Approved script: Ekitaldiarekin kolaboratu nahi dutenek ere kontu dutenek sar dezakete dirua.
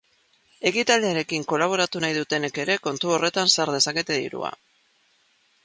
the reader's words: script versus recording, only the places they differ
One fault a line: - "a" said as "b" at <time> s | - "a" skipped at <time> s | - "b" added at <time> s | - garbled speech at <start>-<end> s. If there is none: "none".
- "dutenek" said as "horretan" at 3.2 s